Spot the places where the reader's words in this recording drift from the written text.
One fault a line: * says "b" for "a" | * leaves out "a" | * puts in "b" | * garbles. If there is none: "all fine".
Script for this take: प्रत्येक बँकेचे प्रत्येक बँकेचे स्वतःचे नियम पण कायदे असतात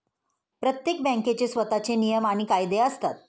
* leaves out "प्रत्येक बँकेचे"
* says "आणि" for "पण"